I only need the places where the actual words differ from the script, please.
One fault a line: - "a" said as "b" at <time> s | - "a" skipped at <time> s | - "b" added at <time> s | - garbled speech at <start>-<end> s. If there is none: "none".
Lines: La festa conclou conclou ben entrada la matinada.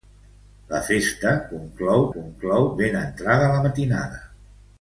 none